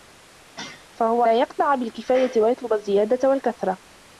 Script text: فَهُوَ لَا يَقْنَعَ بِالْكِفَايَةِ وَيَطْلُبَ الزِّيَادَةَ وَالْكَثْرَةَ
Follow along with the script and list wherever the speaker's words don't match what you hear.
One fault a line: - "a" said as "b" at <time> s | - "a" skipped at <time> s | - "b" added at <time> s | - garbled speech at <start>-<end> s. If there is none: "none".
none